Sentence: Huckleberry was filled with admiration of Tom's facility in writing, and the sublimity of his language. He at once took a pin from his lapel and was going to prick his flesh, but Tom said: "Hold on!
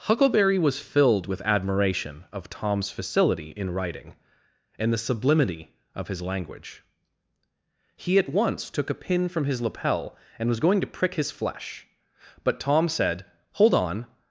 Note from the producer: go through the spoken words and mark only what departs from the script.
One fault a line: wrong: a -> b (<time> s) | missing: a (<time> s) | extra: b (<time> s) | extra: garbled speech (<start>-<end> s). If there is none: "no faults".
no faults